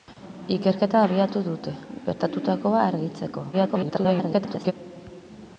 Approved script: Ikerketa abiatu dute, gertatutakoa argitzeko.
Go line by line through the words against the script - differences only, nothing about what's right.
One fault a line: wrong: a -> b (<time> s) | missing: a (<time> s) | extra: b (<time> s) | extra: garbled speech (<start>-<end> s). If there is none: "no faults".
extra: garbled speech (3.5-4.7 s)